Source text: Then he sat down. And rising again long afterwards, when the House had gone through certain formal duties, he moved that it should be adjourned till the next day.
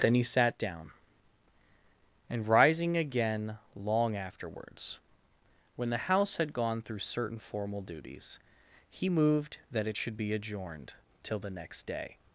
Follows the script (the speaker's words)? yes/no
yes